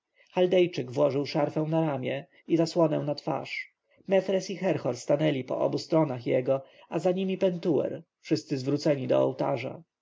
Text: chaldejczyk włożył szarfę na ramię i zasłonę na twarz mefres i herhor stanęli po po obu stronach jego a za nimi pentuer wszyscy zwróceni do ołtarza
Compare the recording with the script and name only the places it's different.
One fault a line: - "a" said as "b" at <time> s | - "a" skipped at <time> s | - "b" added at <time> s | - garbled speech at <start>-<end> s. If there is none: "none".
- "po" skipped at 5.6 s